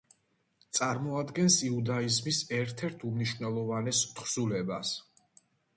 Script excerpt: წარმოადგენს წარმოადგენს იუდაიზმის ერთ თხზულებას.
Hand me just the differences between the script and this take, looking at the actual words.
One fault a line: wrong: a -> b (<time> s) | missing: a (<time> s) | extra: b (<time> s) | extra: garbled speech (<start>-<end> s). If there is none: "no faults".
missing: წარმოადგენს (1.6 s)
extra: ერთ უმნიშვნელოვანეს (2.9 s)